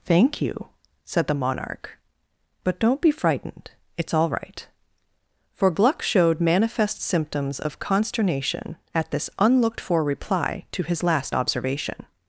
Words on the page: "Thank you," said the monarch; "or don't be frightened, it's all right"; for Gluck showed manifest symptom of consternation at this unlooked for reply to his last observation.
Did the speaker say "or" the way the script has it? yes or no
no